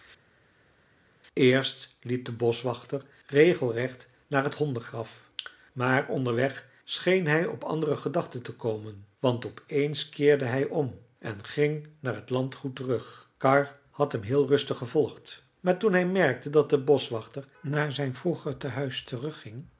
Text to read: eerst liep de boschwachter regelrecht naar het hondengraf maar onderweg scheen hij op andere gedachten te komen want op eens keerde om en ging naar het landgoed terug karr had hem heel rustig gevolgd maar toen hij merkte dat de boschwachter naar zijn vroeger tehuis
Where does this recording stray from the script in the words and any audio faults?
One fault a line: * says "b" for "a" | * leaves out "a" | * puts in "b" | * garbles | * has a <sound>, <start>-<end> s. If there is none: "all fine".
* puts in "hij"